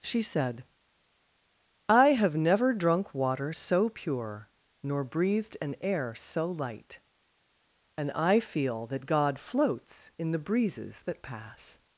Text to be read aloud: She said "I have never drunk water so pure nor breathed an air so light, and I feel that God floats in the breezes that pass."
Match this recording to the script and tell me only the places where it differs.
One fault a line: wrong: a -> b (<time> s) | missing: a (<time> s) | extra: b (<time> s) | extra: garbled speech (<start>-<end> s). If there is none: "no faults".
no faults